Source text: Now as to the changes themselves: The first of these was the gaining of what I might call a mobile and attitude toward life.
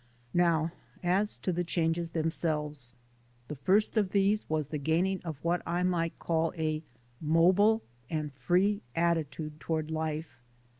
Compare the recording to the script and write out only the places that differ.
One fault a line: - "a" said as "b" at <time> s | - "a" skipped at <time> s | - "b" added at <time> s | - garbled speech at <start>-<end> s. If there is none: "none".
- "free" added at 8.3 s